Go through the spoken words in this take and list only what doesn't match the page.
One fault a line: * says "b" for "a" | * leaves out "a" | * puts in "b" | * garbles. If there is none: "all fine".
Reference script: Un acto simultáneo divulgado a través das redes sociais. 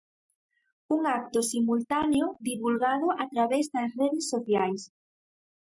all fine